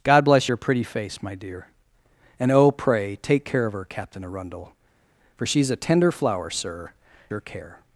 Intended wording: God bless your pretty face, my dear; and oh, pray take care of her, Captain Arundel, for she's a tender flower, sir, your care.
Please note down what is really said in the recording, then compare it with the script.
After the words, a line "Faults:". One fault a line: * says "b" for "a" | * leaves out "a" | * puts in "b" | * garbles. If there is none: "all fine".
God bless your pretty face, my dear; and oh, pray take care of her, Captain Arundel, for she's a tender flower, sir, your care.
Faults:
all fine